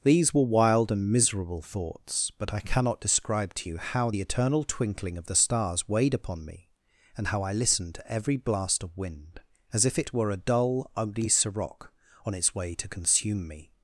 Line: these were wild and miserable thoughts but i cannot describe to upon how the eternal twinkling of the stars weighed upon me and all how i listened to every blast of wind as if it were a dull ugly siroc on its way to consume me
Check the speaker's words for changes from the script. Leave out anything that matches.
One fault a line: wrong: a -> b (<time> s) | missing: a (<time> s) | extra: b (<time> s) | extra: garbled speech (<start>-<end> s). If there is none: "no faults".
wrong: upon -> you (3.7 s)
missing: all (7.3 s)